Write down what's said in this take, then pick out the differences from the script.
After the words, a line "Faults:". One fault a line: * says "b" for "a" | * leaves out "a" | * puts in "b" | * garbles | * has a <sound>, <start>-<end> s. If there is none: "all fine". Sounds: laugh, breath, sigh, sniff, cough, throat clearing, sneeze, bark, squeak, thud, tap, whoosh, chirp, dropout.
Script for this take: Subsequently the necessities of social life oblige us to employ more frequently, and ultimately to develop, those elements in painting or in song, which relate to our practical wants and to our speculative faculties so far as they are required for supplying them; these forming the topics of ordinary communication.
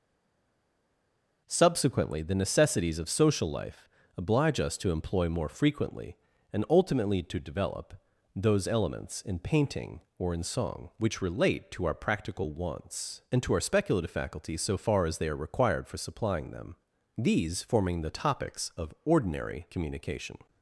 Subsequently the necessities of social life oblige us to employ more frequently, and ultimately to develop, those elements in painting or in song, which relate to our practical wants and to our speculative faculties so far as they are required for supplying them; these forming the topics of ordinary communication.
Faults:
all fine